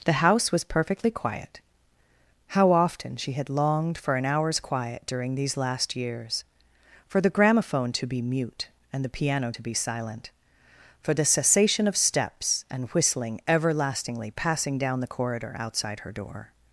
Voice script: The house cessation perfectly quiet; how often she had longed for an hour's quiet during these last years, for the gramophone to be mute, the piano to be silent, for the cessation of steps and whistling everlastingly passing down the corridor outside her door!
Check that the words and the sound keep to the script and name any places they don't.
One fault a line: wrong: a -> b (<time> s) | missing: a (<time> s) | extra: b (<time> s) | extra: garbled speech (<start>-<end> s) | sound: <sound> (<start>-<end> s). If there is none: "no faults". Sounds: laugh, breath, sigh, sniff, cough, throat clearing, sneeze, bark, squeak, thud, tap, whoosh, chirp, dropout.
wrong: cessation -> was (0.5 s)
extra: and (8.9 s)